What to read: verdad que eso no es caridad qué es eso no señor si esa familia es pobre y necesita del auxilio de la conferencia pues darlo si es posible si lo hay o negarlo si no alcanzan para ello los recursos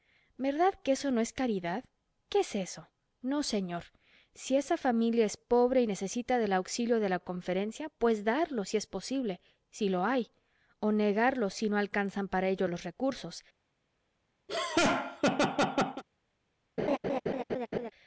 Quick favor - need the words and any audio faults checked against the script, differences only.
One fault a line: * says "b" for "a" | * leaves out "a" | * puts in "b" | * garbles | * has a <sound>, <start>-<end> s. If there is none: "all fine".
* has a laugh, 14.5-16.0 s
* has a laugh, 16.8-17.9 s